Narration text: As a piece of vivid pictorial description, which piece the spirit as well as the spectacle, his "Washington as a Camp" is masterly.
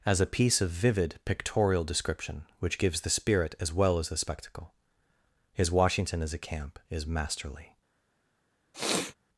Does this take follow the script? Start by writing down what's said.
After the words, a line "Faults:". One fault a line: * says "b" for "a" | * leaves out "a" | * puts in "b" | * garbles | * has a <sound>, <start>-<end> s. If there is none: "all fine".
As a piece of vivid pictorial description, which gives the spirit as well as the spectacle, his "Washington as a Camp" is masterly.
Faults:
* says "gives" for "piece"
* has a sniff, 8.7-9.2 s